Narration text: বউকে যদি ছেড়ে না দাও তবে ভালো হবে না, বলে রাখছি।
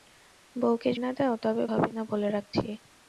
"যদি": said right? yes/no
no